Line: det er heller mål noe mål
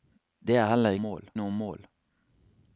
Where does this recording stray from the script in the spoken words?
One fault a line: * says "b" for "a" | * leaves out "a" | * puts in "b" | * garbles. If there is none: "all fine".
all fine